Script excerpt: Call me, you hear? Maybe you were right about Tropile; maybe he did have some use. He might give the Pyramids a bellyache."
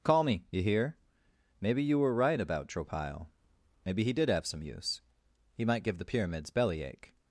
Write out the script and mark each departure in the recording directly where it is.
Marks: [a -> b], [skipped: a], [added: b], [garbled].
Call me, you hear? Maybe you were right about Tropile; maybe he did have some use. He might give the Pyramids [skipped: a] bellyache."